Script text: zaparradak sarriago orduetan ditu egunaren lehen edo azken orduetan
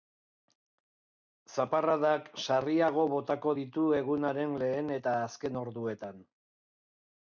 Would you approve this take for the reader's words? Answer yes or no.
no